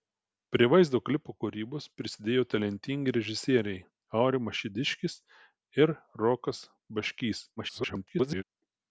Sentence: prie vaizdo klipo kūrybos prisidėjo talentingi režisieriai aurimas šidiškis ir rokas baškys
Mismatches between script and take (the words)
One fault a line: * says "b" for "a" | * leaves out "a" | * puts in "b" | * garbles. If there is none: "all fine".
* garbles